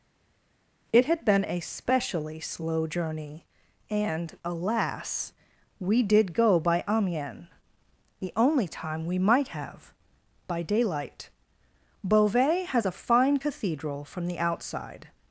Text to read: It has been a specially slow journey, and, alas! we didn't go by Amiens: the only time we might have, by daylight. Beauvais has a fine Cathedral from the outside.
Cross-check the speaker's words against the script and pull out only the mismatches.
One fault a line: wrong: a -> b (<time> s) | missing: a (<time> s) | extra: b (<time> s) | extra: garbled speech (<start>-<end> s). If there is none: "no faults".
wrong: has -> had (1.1 s)
wrong: didn't -> did (6.0 s)